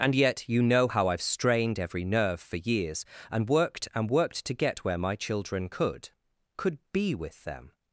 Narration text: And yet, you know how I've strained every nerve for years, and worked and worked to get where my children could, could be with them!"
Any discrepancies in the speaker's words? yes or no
no